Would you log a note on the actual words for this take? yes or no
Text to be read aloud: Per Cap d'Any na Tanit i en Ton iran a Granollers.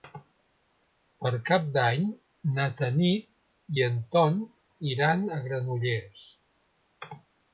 no